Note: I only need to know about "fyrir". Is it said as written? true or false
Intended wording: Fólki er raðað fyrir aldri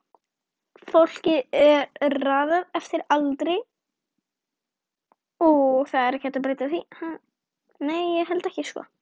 false